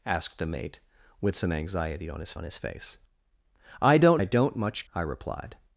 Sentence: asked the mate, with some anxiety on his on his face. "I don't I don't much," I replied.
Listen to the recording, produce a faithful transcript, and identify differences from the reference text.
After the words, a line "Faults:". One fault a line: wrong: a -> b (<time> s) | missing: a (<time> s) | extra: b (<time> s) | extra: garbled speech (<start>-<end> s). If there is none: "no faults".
asked the mate, with some anxiety on his on his face. "I don't I don't much," I replied.
Faults:
no faults